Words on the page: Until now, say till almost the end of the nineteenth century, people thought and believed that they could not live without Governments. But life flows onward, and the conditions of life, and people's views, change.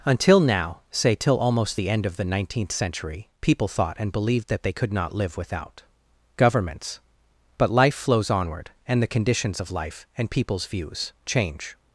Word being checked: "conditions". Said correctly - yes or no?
yes